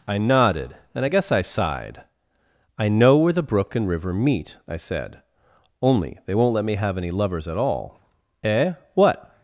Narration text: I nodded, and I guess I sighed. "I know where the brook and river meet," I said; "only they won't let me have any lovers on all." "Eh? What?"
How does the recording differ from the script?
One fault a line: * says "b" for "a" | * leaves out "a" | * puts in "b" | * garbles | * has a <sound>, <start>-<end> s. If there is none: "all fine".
* says "at" for "on"